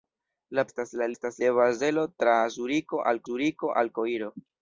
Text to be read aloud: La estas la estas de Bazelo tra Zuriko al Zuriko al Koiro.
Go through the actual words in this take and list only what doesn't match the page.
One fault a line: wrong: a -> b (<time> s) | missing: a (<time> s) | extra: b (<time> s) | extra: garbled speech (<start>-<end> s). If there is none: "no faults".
no faults